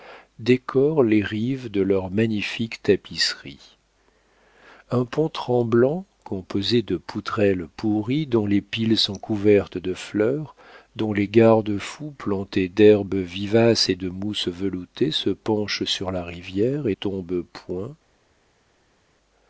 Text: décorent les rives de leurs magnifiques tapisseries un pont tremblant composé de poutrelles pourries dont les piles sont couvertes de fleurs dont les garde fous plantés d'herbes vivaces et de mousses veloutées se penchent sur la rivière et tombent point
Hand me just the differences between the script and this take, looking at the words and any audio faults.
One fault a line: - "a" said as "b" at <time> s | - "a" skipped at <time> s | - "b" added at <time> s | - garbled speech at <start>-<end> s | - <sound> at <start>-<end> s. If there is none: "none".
none